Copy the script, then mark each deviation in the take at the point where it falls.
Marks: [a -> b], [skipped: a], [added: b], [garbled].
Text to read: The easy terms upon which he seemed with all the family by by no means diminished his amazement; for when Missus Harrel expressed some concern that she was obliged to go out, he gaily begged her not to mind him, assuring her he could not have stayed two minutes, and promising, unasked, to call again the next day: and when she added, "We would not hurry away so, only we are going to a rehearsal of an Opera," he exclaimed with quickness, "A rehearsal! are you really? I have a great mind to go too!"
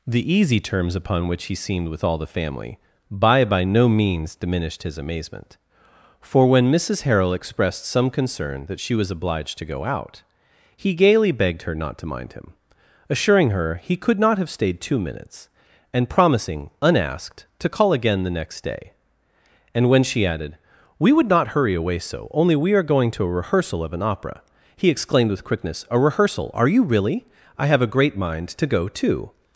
The easy terms upon which he seemed with all the family by by no means diminished his amazement; for when Missus Harrel expressed some concern that she was obliged to go out, he gaily begged her not to mind him, assuring her he could not have stayed two minutes, and promising, unasked, to call again the next day: and when she added, "We would not hurry away so, only we are going to a rehearsal of an Opera," he exclaimed with quickness, "A rehearsal! are you really? I have a great mind to go too!"